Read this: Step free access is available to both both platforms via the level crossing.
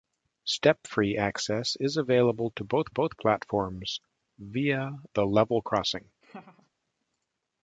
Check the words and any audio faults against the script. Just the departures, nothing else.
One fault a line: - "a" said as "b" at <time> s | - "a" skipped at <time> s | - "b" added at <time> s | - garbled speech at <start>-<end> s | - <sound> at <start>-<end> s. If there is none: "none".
- laugh at 6.2-6.7 s